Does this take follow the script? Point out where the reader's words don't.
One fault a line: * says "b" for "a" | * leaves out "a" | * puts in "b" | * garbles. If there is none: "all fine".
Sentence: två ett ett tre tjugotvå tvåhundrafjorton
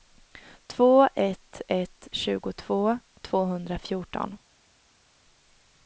* leaves out "tre"